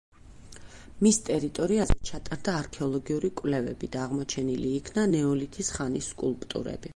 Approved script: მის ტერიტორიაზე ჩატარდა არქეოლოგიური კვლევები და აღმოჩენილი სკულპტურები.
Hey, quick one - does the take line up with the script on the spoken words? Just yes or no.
no